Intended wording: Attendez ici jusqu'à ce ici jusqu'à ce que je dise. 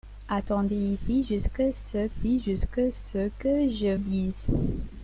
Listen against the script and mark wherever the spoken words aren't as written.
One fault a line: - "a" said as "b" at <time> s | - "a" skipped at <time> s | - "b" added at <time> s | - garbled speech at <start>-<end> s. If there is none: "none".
none